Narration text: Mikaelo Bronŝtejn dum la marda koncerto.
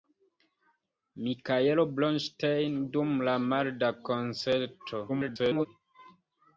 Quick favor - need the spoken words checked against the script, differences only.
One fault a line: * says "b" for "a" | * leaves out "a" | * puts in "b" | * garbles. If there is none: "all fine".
* garbles